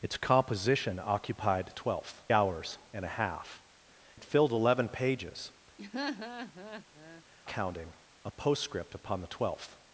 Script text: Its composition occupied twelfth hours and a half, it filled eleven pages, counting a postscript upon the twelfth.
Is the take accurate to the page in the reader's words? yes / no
yes